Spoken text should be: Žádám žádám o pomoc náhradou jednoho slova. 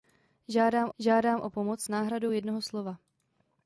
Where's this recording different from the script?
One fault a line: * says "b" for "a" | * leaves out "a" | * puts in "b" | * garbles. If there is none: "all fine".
all fine